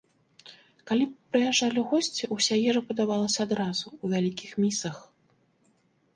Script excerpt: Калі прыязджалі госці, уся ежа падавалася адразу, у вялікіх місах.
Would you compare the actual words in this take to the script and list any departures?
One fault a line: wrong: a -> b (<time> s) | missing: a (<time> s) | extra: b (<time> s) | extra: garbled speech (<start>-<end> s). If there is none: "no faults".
no faults